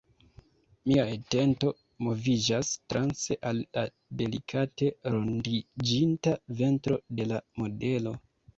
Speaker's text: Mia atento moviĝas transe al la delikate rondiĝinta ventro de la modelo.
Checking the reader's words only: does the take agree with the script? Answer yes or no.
yes